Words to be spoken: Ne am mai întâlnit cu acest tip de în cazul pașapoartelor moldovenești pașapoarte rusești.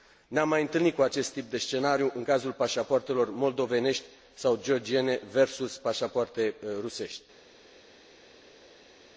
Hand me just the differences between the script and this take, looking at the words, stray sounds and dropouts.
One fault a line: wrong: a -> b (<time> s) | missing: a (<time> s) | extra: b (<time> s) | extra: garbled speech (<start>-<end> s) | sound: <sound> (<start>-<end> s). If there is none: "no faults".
extra: scenariu (1.6 s)
extra: sau georgiene versus (4.3 s)